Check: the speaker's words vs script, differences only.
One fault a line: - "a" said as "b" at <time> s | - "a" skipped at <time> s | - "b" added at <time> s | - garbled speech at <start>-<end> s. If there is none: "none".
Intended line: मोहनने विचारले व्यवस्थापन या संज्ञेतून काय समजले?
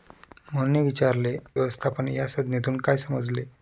none